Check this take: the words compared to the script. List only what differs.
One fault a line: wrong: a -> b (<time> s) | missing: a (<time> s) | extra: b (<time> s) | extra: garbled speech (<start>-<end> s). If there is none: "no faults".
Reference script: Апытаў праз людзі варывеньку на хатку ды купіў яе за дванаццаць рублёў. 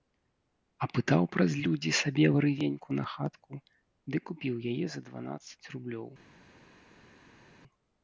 extra: сабе (2.0 s)